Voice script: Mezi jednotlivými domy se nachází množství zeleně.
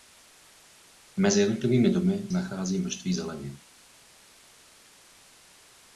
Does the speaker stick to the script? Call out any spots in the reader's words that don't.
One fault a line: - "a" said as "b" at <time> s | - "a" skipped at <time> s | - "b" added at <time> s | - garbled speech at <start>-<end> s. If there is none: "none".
- "se" skipped at 2.3 s